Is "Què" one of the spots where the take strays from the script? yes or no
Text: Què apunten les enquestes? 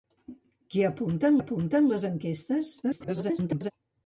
no